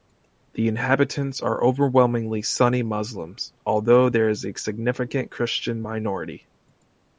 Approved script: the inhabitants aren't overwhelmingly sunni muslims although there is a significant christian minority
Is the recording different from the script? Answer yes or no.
yes